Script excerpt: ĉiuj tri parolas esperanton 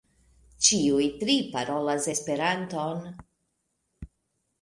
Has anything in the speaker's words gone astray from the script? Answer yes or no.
no